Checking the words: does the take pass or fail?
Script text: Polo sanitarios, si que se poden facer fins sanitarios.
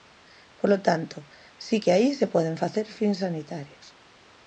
fail